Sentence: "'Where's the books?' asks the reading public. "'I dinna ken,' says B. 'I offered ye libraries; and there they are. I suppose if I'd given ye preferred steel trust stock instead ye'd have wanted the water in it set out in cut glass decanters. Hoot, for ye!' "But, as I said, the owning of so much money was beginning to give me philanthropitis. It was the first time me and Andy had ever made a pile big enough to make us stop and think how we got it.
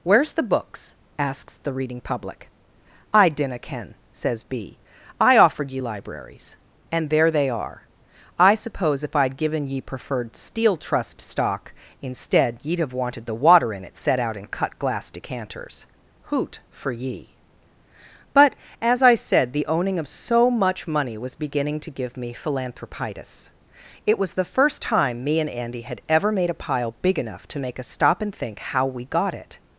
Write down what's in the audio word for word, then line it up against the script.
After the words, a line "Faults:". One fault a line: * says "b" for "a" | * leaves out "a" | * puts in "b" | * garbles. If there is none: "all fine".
"'Where's the books?' asks the reading public. "'I dinna ken,' says B. 'I offered ye libraries; and there they are. I suppose if I'd given ye preferred steel trust stock instead ye'd have wanted the water in it set out in cut glass decanters. Hoot, for ye!' "But, as I said, the owning of so much money was beginning to give me philanthropitis. It was the first time me and Andy had ever made a pile big enough to make us stop and think how we got it.
Faults:
all fine